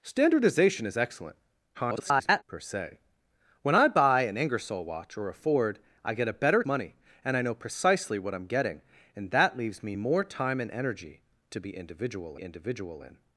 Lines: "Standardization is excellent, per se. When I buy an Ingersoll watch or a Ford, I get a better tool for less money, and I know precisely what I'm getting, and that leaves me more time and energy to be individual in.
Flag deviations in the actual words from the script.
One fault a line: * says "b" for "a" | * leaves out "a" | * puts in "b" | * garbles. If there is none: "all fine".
* garbles
* leaves out "tool for less"
* puts in "individual"